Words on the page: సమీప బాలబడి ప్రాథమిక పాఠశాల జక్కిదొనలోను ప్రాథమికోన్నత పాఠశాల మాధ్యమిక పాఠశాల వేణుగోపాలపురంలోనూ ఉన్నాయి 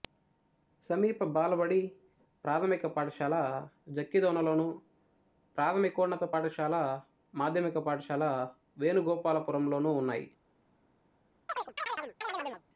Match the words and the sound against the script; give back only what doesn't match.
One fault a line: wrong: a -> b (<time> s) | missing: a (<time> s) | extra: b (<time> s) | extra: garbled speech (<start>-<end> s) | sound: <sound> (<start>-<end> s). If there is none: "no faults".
sound: chirp (11.5-12.6 s)